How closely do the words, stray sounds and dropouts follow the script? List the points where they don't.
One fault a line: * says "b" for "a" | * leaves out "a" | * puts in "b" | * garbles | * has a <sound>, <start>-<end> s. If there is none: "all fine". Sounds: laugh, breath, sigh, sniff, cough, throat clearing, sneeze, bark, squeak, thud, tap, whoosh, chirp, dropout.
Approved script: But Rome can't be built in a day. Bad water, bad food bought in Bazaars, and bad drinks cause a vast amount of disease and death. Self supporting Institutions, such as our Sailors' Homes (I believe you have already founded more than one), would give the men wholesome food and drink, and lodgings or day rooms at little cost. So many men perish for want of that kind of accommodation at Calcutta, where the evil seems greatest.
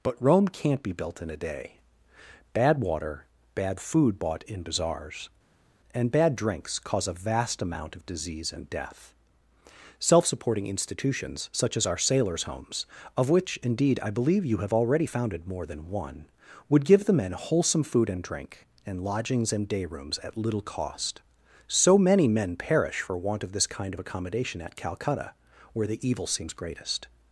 * puts in "of which indeed"
* says "and" for "or"
* says "this" for "that"